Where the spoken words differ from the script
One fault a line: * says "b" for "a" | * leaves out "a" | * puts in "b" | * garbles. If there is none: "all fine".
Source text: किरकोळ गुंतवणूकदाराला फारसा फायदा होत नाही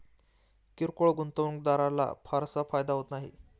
all fine